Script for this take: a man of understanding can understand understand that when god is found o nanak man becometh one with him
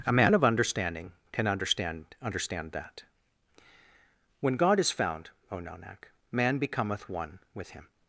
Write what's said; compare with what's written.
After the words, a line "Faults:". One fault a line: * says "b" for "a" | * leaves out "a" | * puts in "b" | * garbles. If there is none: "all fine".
a man of understanding can understand understand that when god is found o nanak man becometh one with him
Faults:
all fine